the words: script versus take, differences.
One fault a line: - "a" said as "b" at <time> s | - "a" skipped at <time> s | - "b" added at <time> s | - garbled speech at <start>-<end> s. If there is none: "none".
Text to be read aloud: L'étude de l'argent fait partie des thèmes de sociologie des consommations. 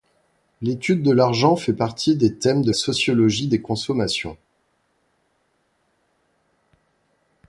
none